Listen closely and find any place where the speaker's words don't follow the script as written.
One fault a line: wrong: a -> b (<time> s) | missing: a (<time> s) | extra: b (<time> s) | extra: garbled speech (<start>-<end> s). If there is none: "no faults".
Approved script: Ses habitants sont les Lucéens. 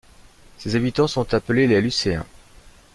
extra: appelés (1.4 s)